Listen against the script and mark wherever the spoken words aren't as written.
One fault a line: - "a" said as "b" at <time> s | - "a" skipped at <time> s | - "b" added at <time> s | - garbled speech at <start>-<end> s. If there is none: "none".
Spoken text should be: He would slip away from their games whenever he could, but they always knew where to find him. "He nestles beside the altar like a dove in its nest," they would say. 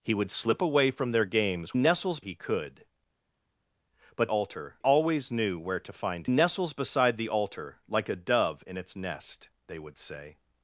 - "whenever" said as "nestles" at 1.8 s
- "they" said as "altar" at 4.3 s
- "him He" skipped at 6.3 s